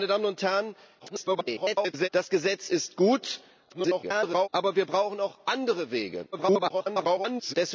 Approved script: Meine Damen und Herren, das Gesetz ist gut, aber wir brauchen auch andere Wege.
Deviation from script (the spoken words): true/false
true